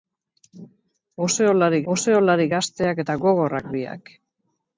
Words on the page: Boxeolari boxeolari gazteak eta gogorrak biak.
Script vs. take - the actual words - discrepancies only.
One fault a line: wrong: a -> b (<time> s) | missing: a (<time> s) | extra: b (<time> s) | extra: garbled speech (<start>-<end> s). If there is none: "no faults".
no faults